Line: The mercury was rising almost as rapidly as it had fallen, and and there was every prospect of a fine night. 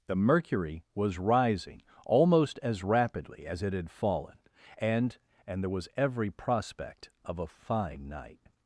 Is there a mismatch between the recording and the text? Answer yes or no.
no